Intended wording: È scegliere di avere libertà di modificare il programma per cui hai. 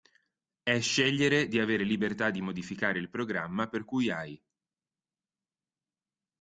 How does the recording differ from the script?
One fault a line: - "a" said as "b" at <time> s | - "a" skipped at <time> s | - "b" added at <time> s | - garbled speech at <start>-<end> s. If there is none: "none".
none